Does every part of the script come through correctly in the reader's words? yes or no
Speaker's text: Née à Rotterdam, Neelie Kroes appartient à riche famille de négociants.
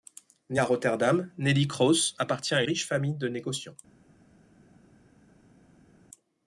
yes